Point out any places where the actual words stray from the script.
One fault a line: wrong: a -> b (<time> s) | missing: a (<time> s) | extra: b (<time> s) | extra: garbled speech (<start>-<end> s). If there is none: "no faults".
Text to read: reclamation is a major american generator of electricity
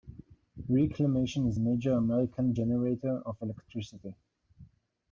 no faults